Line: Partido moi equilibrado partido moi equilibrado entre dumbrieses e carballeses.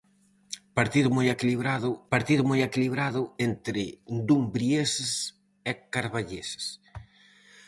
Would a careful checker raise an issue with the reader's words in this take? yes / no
no